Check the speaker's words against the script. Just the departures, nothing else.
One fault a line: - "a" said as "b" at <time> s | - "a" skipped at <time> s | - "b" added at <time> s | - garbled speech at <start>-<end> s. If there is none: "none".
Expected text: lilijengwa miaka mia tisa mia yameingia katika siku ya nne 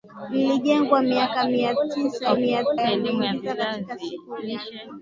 none